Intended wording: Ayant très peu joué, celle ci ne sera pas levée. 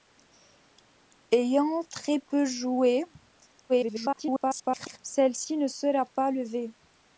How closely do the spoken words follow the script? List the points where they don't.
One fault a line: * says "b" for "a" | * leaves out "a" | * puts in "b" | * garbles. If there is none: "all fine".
* garbles